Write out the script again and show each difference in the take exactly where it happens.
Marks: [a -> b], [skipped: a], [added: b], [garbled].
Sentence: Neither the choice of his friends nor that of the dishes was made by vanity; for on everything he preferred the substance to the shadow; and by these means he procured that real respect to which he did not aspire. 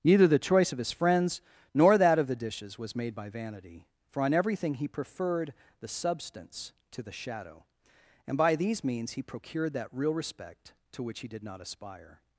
Neither the choice of his friends nor that of the dishes was made by vanity; for on everything he preferred the substance to the shadow; and by these means he procured that real respect to which he did not aspire.